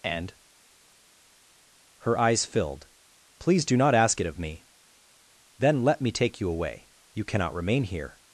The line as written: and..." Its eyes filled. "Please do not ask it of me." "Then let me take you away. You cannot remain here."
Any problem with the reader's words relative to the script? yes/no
yes